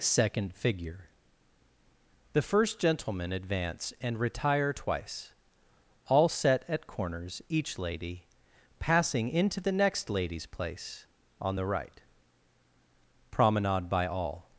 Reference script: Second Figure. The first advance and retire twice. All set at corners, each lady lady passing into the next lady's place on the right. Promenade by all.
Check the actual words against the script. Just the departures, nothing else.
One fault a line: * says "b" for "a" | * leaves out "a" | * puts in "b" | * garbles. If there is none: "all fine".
* puts in "gentleman"
* leaves out "lady"